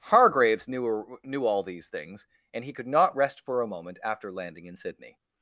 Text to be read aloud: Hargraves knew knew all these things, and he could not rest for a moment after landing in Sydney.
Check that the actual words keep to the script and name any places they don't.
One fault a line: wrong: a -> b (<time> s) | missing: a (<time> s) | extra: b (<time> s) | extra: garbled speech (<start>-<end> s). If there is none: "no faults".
no faults